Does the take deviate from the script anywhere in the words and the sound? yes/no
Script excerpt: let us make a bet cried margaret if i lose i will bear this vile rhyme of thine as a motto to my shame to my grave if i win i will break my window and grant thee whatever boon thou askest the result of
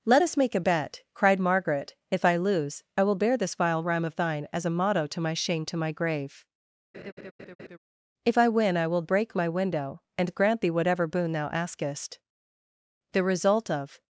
yes